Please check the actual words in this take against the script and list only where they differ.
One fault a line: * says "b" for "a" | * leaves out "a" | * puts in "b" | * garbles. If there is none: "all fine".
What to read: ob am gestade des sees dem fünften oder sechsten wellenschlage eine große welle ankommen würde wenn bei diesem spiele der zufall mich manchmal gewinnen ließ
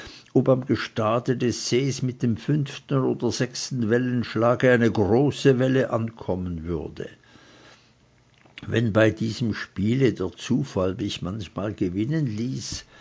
* puts in "mit"